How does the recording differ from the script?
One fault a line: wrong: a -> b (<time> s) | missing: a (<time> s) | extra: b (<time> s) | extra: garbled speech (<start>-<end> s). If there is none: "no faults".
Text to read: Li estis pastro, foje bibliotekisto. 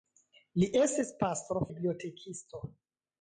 missing: foje (1.6 s)